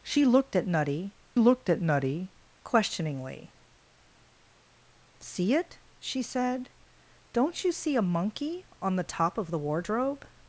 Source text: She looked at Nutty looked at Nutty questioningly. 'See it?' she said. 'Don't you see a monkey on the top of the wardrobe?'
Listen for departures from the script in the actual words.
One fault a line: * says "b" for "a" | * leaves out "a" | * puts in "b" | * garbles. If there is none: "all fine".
all fine